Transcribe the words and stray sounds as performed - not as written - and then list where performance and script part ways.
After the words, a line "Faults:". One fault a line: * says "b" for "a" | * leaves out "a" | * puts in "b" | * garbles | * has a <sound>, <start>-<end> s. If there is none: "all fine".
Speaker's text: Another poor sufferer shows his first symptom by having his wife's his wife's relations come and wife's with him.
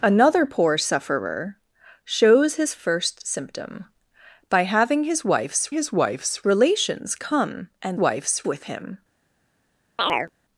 Another poor sufferer shows his first symptom by having his wife's his wife's relations come and wife's with him.
Faults:
* has a chirp, 10.0-10.3 s